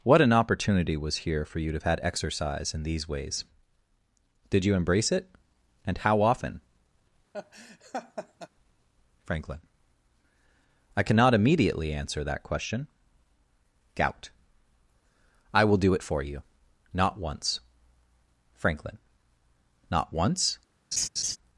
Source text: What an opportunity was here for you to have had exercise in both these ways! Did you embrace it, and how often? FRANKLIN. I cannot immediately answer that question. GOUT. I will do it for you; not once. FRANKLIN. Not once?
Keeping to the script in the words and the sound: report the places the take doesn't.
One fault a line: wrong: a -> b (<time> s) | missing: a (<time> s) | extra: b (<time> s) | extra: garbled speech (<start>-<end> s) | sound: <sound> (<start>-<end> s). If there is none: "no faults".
missing: both (2.8 s)
sound: laugh (7.3-8.5 s)
sound: laugh (20.9-21.4 s)